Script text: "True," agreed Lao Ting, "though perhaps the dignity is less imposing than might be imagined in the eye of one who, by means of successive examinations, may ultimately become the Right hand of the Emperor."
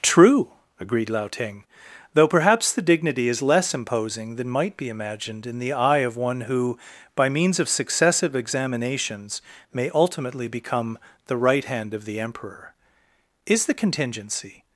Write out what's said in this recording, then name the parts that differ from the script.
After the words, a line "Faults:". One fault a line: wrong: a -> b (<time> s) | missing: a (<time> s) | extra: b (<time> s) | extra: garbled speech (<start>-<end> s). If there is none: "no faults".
"True," agreed Lao Ting, "though perhaps the dignity is less imposing than might be imagined in the eye of one who, by means of successive examinations, may ultimately become the Right hand of the Emperor." "Is the contingency
Faults:
extra: Is the contingency (13.4 s)